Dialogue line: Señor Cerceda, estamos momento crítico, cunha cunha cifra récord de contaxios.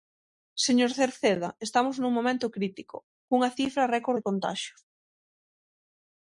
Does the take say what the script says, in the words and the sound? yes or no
no